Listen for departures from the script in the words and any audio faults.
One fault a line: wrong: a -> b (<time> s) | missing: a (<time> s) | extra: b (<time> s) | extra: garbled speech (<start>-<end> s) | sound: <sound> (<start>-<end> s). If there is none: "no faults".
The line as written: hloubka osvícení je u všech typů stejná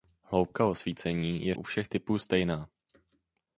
no faults